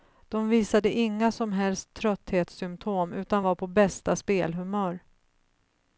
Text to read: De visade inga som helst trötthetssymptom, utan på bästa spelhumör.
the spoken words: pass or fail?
fail